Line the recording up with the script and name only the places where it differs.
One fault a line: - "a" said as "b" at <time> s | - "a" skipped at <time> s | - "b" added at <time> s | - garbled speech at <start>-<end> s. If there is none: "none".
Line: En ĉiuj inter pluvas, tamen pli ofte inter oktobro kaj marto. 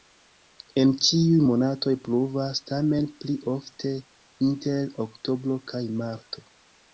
- "inter" said as "monatoj" at 1.5 s